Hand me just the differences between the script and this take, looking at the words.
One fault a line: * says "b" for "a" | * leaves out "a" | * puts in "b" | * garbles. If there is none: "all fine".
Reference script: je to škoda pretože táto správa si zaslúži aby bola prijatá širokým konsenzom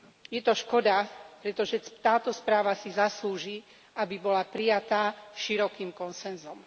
all fine